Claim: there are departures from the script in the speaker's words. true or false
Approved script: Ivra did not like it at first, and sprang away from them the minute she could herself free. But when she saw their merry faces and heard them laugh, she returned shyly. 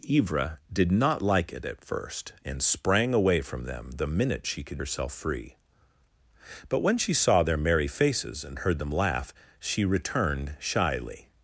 false